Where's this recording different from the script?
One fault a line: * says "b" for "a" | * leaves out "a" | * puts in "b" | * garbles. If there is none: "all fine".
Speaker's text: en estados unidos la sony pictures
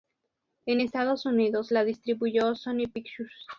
* puts in "distribuyó"